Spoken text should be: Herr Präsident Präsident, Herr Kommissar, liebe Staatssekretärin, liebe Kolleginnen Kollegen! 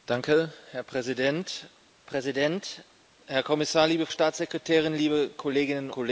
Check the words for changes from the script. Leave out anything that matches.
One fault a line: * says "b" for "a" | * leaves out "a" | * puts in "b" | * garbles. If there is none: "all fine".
all fine